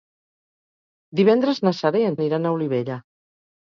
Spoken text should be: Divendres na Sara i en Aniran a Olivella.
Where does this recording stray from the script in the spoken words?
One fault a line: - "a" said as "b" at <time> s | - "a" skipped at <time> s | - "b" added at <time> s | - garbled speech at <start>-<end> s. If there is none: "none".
none